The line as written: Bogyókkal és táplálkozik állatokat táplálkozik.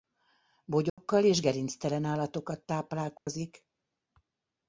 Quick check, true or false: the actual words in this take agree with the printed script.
false